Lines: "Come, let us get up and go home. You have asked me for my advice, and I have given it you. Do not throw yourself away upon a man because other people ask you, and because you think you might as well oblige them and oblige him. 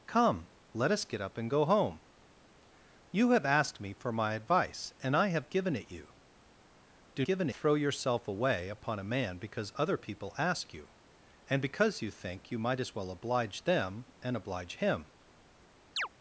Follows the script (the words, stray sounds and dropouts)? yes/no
no